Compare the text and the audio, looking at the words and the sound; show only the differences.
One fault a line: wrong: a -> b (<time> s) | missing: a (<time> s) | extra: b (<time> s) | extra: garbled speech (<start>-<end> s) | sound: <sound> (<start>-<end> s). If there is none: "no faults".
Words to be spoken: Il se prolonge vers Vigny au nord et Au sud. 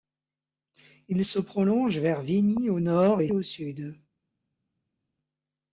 no faults